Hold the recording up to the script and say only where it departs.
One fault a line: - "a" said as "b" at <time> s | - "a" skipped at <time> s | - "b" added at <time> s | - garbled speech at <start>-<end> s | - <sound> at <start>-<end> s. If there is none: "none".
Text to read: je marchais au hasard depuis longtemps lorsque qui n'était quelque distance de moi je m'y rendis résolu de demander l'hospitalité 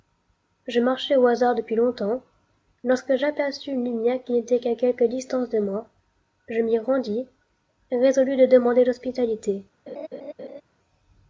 - "j'aperçus une lumière" added at 3.2 s
- "qu'à" added at 4.6 s
- laugh at 9.9-10.6 s